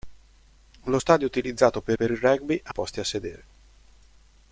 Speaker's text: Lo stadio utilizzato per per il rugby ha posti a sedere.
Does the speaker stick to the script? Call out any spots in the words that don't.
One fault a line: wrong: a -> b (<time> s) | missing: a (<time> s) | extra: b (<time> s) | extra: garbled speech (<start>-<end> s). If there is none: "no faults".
no faults